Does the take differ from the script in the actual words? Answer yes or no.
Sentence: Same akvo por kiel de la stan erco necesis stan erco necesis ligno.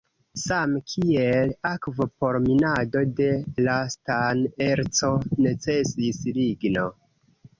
yes